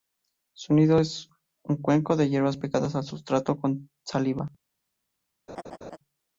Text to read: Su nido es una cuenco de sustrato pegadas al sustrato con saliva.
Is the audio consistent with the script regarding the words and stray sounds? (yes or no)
no